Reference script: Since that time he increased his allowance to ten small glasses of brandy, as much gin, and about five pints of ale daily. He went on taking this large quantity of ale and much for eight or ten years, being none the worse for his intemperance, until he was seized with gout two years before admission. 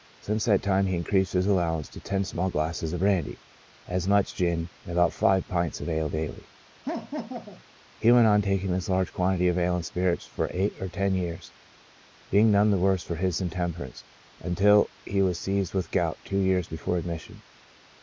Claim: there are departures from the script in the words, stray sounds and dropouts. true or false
true